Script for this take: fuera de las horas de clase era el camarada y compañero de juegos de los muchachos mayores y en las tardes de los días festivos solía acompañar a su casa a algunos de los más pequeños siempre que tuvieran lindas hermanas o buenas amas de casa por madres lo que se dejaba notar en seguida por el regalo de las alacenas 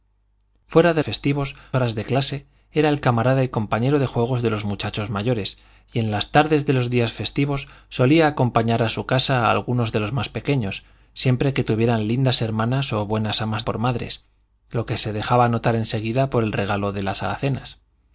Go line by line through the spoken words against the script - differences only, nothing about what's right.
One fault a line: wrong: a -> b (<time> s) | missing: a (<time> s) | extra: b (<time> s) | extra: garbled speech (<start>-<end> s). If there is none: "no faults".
wrong: las -> festivos (1.0 s)
missing: de casa (13.6 s)